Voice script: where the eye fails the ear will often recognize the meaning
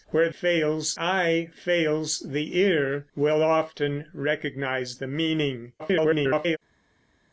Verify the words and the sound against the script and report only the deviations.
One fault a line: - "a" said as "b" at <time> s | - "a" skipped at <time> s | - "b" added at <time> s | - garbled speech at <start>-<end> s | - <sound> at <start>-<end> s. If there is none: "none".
- "the" said as "fails" at 0.3 s
- garbled speech at 5.8-6.6 s